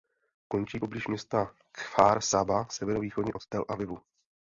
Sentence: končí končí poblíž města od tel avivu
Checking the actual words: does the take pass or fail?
fail